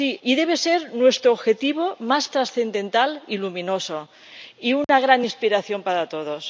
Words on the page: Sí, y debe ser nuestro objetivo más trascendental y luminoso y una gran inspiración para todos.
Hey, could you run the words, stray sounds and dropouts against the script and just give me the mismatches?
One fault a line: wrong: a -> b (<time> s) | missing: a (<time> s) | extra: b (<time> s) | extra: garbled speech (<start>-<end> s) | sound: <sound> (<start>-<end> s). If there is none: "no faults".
sound: dropout (4.8-4.9 s)